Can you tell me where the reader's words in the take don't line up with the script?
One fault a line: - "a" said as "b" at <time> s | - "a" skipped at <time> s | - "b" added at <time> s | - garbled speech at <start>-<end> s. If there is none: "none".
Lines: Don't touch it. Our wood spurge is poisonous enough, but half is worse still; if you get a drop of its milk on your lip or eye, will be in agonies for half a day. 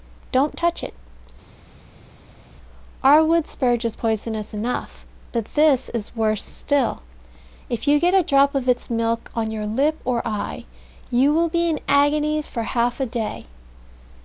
- "half" said as "this" at 5.5 s
- "you" added at 11.1 s